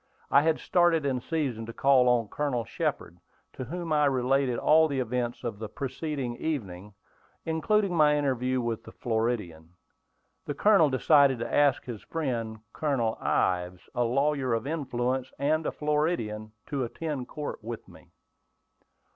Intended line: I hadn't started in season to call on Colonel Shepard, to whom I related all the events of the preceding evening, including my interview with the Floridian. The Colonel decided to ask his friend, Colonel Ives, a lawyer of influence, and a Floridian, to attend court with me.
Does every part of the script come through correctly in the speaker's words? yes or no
no